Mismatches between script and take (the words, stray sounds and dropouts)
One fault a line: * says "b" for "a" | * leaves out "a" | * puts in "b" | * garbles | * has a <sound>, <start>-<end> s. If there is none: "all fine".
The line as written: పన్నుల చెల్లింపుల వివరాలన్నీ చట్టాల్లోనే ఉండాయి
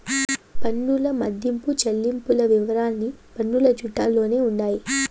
* puts in "మదింపు"
* puts in "పన్నుల"